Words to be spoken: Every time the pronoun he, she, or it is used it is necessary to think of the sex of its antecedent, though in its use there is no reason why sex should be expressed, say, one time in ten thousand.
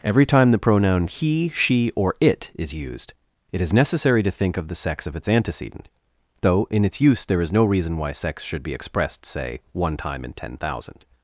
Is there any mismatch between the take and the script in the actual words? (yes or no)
no